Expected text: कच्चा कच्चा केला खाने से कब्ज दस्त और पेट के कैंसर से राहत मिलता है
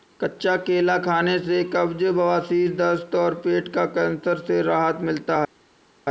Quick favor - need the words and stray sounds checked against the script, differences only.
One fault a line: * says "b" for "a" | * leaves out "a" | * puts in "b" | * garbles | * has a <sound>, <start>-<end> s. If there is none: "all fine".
* leaves out "कच्चा"
* puts in "बवासीर"
* says "का" for "के"